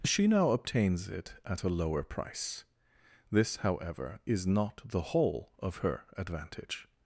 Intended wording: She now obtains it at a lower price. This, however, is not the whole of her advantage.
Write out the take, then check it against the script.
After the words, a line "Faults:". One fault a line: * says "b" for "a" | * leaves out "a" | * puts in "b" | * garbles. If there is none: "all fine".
She now obtains it at a lower price. This, however, is not the whole of her advantage.
Faults:
all fine